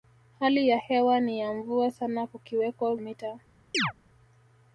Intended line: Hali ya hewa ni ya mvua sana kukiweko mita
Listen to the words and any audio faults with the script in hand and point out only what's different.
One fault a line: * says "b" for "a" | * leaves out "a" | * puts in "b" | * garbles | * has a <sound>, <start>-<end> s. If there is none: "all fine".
* has a chirp, 3.7-3.9 s